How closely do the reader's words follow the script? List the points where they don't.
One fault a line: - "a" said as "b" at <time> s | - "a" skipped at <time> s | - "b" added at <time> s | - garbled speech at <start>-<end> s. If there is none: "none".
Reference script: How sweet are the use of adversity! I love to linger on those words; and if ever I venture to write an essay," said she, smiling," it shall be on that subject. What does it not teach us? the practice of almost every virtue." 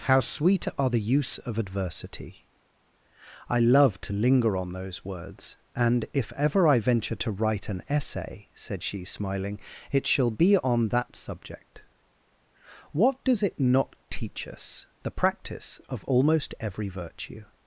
none